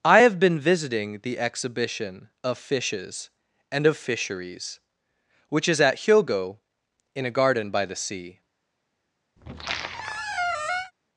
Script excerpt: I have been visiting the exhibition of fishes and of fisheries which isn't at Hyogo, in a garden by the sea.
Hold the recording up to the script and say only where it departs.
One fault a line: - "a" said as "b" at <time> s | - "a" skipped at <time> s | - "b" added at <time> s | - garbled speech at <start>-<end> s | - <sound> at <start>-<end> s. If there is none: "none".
- "isn't" said as "is" at 5.7 s
- squeak at 9.4-10.9 s